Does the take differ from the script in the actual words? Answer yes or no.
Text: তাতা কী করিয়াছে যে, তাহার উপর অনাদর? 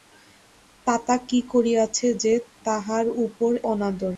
no